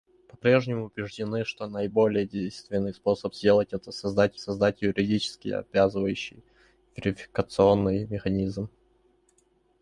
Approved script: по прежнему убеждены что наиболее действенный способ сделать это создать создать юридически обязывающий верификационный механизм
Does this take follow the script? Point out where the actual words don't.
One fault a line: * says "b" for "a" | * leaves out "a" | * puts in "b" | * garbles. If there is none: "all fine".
all fine